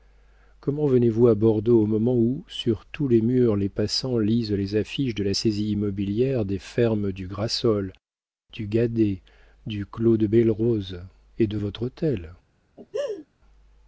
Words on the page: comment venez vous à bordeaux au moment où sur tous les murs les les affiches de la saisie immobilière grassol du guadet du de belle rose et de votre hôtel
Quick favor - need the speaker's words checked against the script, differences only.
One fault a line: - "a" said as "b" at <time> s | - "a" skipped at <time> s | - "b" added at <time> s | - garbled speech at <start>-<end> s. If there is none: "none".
- "passants lisent" added at 3.7 s
- "des fermes du" added at 6.4 s
- "clos" added at 9.9 s